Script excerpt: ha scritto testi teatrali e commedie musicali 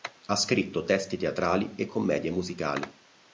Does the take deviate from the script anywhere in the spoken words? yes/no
no